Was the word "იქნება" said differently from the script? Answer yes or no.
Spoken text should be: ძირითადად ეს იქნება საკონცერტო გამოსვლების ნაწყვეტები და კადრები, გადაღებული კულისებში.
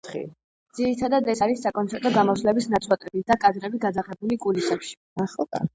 yes